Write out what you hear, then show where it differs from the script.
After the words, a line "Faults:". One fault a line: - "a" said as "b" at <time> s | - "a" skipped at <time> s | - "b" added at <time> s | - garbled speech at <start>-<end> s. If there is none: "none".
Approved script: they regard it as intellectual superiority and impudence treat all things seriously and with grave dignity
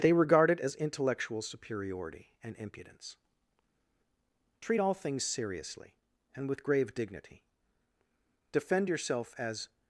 they regard it as intellectual superiority and impudence treat all things seriously and with grave dignity defend yourself as
Faults:
- "defend yourself as" added at 8.5 s